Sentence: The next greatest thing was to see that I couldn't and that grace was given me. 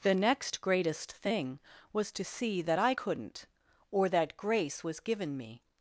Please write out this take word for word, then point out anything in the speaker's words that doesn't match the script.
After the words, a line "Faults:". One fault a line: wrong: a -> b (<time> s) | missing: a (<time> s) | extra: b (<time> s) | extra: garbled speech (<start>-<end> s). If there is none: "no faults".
The next greatest thing was to see that I couldn't or that grace was given me.
Faults:
wrong: and -> or (3.9 s)